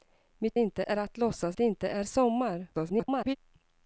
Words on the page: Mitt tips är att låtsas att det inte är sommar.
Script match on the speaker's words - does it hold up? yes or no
no